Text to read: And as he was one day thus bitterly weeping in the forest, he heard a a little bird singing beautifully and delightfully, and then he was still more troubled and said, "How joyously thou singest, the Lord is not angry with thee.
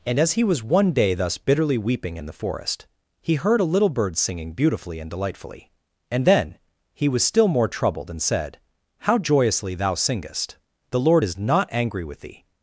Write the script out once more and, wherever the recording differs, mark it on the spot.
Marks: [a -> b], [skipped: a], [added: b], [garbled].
And as he was one day thus bitterly weeping in the forest, he heard a [skipped: a] little bird singing beautifully and delightfully, and then he was still more troubled and said, "How joyously thou singest, the Lord is not angry with thee.